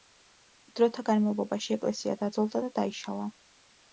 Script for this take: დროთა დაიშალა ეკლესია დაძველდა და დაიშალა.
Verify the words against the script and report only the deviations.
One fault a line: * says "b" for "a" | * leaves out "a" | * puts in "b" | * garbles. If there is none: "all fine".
* says "განმავლობაში" for "დაიშალა"